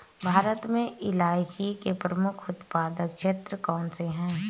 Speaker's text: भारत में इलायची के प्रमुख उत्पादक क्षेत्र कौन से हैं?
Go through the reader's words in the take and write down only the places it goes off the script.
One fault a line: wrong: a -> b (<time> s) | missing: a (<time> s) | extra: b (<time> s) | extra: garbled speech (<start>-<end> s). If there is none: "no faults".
no faults